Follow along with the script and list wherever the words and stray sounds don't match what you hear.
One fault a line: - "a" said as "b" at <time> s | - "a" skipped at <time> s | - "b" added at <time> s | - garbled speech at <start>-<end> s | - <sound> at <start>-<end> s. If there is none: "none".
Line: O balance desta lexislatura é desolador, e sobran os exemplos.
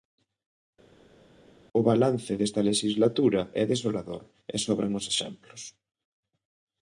none